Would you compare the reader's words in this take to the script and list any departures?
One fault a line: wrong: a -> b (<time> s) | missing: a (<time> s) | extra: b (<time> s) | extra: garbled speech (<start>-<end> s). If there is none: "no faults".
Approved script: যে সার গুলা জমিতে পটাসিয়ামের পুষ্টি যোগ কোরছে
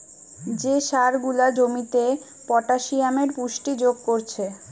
no faults